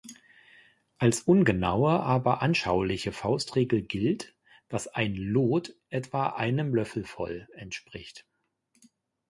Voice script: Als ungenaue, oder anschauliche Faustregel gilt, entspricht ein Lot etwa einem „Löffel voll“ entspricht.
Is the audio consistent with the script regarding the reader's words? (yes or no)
no